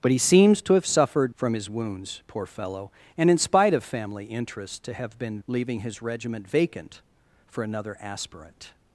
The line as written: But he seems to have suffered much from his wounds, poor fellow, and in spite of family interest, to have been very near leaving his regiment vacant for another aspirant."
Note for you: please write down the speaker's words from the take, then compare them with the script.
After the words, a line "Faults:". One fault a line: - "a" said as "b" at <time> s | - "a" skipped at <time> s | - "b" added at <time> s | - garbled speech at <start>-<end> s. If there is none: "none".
But he seems to have suffered from his wounds, poor fellow, and in spite of family interest, to have been leaving his regiment vacant for another aspirant."
Faults:
- "much" skipped at 1.4 s
- "very near" skipped at 5.4 s